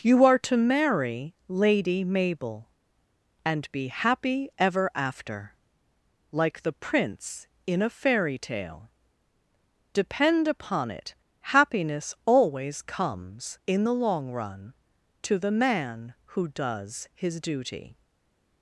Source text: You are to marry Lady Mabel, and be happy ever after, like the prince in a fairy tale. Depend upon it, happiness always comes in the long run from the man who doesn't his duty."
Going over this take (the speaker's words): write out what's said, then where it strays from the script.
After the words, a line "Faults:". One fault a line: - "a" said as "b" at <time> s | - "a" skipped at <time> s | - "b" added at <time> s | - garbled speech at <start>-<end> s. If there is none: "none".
You are to marry Lady Mabel, and be happy ever after, like the prince in a fairy tale. Depend upon it, happiness always comes in the long run to the man who does his duty."
Faults:
- "from" said as "to" at 15.2 s
- "doesn't" said as "does" at 16.5 s